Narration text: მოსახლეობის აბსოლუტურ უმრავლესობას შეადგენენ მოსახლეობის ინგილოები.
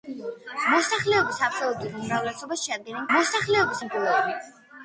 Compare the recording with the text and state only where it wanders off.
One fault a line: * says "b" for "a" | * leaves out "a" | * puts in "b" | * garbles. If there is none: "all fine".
all fine